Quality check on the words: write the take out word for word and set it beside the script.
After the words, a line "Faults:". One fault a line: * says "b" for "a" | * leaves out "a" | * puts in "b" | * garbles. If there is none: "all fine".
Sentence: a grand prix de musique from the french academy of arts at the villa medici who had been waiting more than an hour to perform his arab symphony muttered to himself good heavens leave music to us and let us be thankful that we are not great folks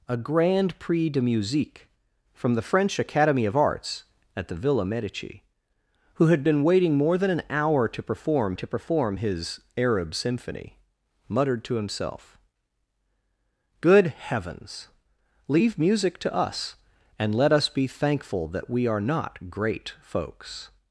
a grand prix de musique from the french academy of arts at the villa medici who had been waiting more than an hour to perform to perform his arab symphony muttered to himself good heavens leave music to us and let us be thankful that we are not great folks
Faults:
* puts in "to perform"